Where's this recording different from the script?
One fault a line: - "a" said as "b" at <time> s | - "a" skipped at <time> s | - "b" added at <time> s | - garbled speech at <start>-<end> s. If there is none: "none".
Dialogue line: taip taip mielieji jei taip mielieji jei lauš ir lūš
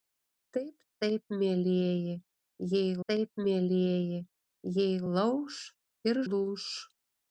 none